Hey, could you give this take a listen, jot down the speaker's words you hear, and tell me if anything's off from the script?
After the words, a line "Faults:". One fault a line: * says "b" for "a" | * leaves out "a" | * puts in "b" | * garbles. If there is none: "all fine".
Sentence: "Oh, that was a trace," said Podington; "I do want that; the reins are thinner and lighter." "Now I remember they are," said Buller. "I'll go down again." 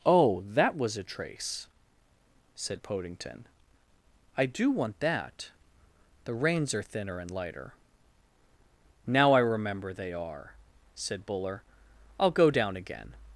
"Oh, that was a trace," said Podington; "I do want that; the reins are thinner and lighter." "Now I remember they are," said Buller. "I'll go down again."
Faults:
all fine